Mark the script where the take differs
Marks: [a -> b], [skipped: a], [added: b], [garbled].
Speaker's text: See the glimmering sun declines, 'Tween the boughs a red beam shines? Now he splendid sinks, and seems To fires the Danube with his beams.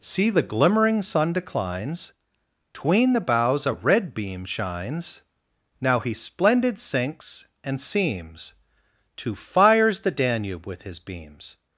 See the glimmering sun declines, 'Tween the boughs a red beam shines? Now he splendid sinks, and seems To fires the Danube with his beams.